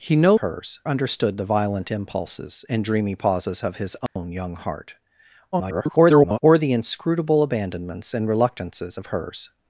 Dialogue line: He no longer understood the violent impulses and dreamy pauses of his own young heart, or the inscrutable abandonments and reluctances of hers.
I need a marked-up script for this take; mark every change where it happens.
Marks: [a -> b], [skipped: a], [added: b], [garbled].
He no [longer -> hers] understood the violent impulses and dreamy pauses of his own young heart, [garbled] or the inscrutable abandonments and reluctances of hers.